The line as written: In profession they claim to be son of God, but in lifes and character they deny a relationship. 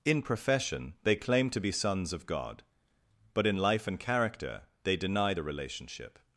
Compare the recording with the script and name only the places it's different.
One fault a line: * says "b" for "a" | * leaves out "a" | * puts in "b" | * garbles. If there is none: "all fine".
* says "sons" for "son"
* says "life" for "lifes"
* says "the" for "a"